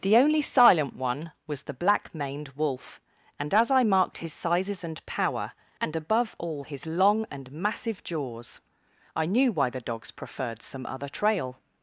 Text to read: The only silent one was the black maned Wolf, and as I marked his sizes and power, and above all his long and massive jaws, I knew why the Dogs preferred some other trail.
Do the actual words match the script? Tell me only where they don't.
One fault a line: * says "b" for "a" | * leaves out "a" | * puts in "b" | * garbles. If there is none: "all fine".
all fine